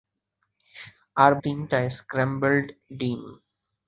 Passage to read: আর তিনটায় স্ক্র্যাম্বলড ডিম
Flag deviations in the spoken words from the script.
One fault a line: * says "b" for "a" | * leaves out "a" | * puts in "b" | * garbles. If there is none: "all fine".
all fine